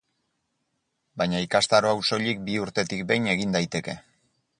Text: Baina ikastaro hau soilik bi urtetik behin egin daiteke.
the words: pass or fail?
pass